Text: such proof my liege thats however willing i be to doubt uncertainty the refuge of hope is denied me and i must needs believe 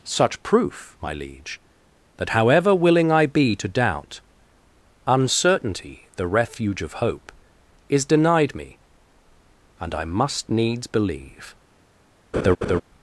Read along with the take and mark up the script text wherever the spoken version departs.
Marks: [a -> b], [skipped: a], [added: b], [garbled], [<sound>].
such proof my liege [thats -> that] however willing i be to doubt uncertainty the refuge of hope is denied me and i must needs believe [laugh]